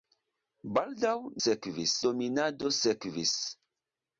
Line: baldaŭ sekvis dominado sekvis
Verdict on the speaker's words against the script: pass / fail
pass